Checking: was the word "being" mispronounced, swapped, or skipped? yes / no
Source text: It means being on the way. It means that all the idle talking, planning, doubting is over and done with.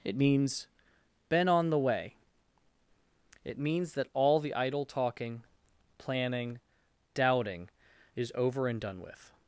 yes